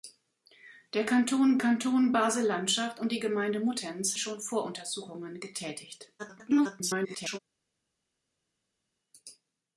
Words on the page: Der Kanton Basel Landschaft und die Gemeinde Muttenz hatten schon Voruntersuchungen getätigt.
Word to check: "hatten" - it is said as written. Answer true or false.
false